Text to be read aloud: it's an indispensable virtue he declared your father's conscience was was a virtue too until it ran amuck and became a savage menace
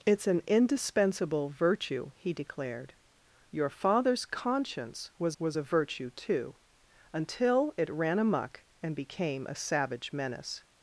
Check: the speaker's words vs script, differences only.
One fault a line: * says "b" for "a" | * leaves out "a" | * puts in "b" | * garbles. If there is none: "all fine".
all fine